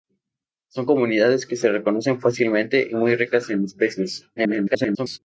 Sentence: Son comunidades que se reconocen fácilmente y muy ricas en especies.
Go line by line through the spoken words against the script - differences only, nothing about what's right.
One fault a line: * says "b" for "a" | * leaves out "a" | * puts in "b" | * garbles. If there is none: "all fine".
* garbles